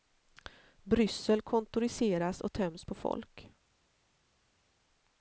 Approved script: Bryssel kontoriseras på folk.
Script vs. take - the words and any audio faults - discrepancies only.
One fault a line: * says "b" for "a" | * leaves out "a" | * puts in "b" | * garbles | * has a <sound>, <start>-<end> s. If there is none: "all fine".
* puts in "och töms"